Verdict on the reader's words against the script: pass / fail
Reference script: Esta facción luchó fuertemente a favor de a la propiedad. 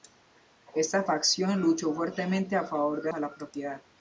pass